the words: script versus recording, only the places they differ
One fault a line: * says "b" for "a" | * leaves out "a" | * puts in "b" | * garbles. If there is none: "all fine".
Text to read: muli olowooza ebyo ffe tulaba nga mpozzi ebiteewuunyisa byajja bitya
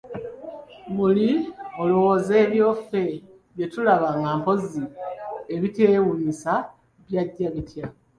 * puts in "bye"